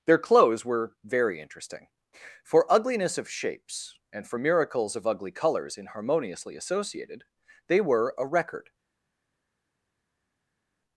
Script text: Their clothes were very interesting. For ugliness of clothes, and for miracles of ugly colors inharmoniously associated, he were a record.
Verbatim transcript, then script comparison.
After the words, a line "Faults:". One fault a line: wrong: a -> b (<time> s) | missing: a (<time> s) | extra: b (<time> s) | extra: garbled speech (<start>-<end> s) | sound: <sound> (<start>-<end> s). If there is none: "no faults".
Their clothes were very interesting. For ugliness of shapes, and for miracles of ugly colors inharmoniously associated, they were a record.
Faults:
wrong: clothes -> shapes (3.3 s)
wrong: he -> they (7.7 s)